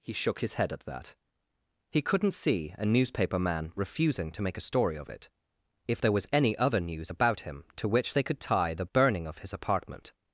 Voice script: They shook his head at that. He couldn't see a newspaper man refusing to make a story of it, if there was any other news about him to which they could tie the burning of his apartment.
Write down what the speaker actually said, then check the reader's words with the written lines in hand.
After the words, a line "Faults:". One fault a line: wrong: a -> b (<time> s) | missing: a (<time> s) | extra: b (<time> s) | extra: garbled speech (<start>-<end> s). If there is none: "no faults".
He shook his head at that. He couldn't see a newspaper man refusing to make a story of it, if there was any other news about him to which they could tie the burning of his apartment.
Faults:
wrong: They -> He (0.0 s)